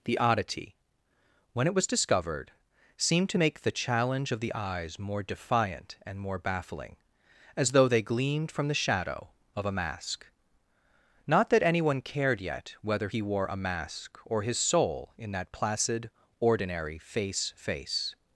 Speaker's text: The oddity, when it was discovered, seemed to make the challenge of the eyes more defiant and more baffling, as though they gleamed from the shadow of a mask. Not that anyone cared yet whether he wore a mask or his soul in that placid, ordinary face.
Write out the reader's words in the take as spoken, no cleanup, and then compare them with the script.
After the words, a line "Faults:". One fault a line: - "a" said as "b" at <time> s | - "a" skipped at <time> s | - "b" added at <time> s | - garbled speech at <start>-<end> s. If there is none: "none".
The oddity, when it was discovered, seemed to make the challenge of the eyes more defiant and more baffling, as though they gleamed from the shadow of a mask. Not that anyone cared yet whether he wore a mask or his soul in that placid, ordinary face face.
Faults:
- "face" added at 17.6 s